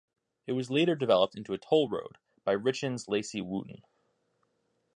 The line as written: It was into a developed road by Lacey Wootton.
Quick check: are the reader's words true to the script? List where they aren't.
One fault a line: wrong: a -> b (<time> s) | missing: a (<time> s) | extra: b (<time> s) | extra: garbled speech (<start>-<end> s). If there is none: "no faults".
extra: later developed (0.7 s)
wrong: developed -> toll (1.6 s)
extra: Richens (2.6 s)